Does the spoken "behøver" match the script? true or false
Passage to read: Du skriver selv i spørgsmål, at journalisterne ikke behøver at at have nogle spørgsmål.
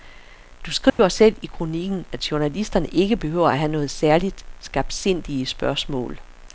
true